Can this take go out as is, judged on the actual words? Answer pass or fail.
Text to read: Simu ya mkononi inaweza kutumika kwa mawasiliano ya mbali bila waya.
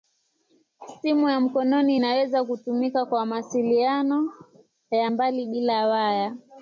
pass